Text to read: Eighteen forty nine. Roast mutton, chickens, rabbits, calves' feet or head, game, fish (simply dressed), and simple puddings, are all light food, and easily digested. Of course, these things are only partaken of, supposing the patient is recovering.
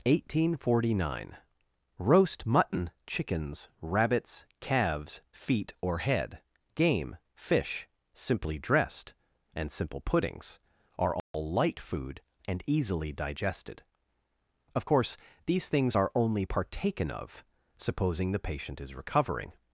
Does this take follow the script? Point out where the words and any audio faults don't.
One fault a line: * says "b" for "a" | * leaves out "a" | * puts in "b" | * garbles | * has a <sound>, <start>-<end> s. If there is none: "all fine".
* has a dropout, 11.2-11.3 s